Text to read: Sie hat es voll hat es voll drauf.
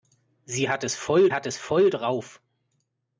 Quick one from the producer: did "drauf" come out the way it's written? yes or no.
yes